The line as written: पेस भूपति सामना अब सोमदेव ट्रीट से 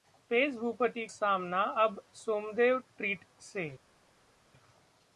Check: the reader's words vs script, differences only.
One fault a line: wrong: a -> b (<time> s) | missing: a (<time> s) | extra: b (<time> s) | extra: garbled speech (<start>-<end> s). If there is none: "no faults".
no faults